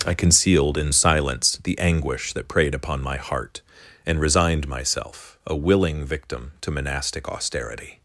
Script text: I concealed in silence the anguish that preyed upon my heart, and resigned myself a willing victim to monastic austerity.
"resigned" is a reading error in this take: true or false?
false